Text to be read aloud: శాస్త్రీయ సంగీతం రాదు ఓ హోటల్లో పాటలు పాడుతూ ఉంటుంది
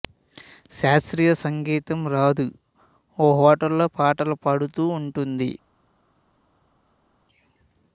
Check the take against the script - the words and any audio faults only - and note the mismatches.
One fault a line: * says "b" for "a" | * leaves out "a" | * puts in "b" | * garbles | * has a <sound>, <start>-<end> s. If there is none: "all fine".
all fine